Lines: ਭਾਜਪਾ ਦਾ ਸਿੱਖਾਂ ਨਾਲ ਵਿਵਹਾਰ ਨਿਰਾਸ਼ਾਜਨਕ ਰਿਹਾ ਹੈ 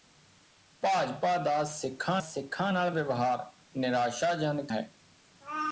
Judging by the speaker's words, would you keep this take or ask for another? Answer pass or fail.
fail